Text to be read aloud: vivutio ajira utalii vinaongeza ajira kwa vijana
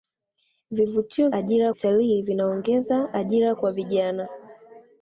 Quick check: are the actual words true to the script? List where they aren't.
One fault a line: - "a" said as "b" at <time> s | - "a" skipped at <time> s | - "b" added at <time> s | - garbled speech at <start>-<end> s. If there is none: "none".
none